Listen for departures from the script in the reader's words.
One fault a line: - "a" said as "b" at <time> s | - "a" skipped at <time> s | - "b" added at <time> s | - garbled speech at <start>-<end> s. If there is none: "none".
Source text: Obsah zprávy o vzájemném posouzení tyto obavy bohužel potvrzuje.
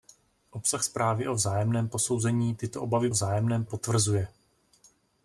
- "bohužel" said as "vzájemném" at 3.1 s